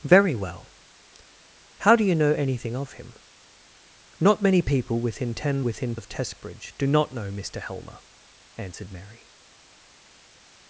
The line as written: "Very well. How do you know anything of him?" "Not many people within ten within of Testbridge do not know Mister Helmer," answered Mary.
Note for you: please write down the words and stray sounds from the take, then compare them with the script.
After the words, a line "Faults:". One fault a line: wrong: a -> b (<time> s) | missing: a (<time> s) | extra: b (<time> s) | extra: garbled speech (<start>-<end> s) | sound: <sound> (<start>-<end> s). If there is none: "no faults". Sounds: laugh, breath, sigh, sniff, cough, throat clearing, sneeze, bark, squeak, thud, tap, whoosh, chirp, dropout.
"Very well. How do you know anything of him?" "Not many people within ten within of Testbridge do not know Mister Helmer," answered Mary.
Faults:
no faults